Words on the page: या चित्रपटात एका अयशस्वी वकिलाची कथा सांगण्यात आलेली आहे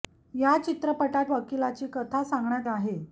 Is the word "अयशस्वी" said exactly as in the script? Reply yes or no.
no